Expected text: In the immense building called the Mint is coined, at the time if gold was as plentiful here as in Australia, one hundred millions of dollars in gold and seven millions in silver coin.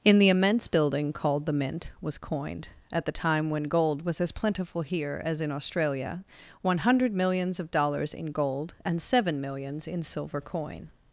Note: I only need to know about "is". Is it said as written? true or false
false